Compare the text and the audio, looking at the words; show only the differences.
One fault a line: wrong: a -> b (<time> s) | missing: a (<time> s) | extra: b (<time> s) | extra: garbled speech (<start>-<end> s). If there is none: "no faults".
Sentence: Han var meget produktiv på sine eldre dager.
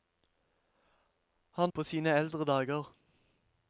missing: var meget produktiv (1.7 s)